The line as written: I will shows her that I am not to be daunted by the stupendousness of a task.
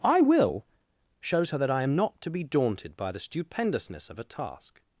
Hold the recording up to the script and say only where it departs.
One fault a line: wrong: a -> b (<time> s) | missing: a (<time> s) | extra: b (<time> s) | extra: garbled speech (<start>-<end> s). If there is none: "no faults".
no faults